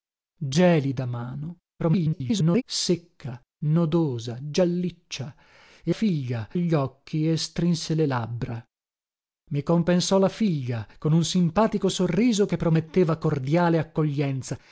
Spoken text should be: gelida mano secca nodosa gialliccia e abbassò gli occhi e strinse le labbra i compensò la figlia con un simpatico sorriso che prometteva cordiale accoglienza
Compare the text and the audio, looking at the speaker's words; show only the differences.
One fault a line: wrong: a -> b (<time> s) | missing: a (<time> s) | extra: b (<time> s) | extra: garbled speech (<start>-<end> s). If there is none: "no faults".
extra: garbled speech (1.8-2.6 s)
wrong: abbassò -> figlia (5.9 s)